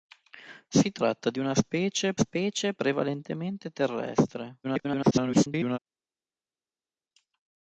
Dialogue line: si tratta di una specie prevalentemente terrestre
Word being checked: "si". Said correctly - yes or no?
yes